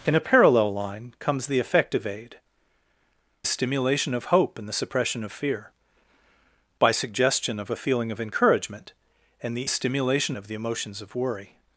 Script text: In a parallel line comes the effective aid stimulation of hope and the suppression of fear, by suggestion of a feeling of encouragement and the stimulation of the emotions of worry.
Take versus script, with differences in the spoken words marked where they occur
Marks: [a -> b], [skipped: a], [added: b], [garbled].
In a parallel line comes the effective aid stimulation of hope and the suppression of fear, by suggestion of a feeling of encouragement and the stimulation of the emotions of worry.